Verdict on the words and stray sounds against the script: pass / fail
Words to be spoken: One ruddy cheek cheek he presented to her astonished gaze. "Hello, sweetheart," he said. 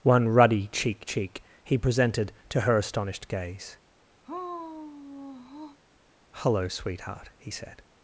fail